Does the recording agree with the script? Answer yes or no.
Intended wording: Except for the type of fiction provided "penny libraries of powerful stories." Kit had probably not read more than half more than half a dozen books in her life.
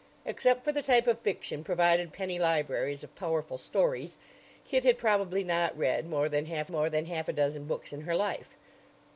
yes